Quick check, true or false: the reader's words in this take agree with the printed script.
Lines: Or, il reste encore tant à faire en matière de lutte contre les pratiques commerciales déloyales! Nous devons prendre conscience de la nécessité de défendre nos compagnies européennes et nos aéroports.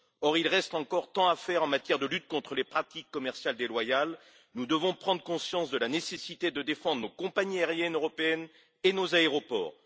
false